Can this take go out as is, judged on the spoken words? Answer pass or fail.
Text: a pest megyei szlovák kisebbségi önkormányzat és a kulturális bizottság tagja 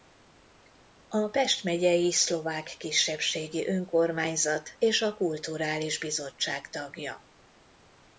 pass